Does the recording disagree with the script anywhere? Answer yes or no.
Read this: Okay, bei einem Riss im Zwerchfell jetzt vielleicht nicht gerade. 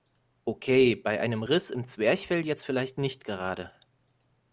no